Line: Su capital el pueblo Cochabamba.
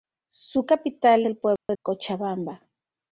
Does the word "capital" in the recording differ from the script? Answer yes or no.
no